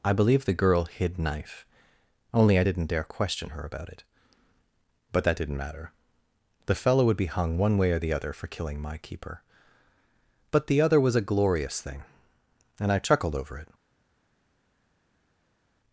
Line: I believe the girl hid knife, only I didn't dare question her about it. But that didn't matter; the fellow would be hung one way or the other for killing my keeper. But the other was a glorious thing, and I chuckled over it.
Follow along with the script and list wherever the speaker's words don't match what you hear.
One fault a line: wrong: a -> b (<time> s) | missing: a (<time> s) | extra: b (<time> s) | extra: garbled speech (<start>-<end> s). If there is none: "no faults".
no faults